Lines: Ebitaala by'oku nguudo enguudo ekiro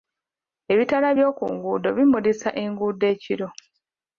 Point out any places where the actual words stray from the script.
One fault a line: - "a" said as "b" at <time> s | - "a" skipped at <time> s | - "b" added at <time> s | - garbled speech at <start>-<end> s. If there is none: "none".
- "bimulisa" added at 2.0 s